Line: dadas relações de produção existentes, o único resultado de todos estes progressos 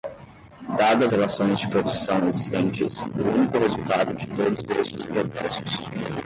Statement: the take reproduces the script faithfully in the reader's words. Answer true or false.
true